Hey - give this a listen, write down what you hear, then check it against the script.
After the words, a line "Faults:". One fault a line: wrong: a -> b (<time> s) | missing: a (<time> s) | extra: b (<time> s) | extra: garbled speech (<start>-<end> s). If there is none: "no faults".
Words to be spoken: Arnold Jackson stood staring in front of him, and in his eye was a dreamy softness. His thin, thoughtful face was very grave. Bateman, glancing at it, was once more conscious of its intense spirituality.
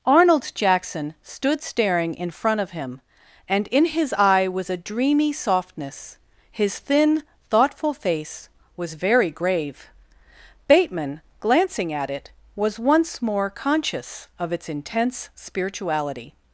Arnold Jackson stood staring in front of him, and in his eye was a dreamy softness. His thin, thoughtful face was very grave. Bateman, glancing at it, was once more conscious of its intense spirituality.
Faults:
no faults